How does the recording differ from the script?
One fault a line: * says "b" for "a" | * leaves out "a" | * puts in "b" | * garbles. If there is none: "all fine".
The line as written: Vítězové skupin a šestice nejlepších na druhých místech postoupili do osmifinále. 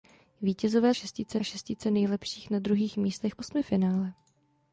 * says "šestice" for "skupin"
* leaves out "postoupili do"